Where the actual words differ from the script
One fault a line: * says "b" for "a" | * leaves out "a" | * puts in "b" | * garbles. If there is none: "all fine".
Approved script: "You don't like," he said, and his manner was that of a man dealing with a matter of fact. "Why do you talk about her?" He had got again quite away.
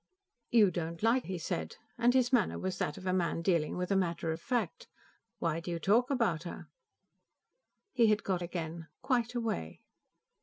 all fine